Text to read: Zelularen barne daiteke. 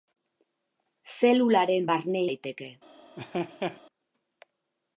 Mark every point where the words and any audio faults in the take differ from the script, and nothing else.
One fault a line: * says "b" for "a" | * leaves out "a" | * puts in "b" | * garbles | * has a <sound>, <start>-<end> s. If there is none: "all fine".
* has a laugh, 3.2-3.8 s